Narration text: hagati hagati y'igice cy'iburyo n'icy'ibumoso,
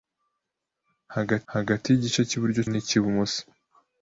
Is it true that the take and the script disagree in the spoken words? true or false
false